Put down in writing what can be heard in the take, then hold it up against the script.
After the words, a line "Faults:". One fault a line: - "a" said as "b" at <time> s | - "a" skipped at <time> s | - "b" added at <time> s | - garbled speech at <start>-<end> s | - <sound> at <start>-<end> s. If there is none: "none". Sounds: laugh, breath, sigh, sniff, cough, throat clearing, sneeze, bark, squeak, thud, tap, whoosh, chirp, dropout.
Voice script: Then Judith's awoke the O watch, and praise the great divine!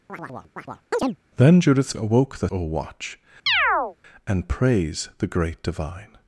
Then Judith's awoke the O watch, and praise the great divine!
Faults:
- chirp at 0.1-1.2 s
- chirp at 3.5-4.0 s